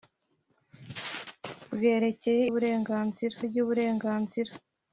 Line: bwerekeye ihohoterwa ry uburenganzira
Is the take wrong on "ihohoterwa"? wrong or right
wrong